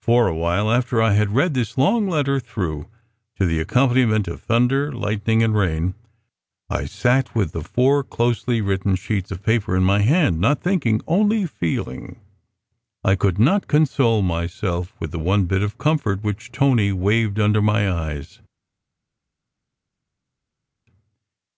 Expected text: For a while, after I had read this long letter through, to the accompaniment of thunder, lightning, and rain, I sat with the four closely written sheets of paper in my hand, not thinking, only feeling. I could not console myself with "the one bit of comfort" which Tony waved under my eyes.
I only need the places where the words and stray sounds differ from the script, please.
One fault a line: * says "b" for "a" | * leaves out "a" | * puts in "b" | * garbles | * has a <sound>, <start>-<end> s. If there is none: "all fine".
all fine